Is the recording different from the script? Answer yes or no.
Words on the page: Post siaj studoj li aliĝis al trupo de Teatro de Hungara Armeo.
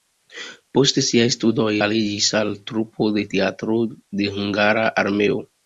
yes